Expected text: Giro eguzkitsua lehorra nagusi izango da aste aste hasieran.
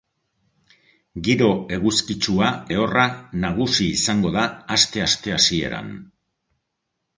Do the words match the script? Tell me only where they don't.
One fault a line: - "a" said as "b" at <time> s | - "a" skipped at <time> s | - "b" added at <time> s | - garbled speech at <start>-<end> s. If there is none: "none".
none